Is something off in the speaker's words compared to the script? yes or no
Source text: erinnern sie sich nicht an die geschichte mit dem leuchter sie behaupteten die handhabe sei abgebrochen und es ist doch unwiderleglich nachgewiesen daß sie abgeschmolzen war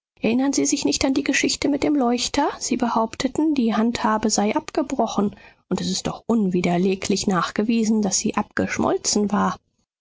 no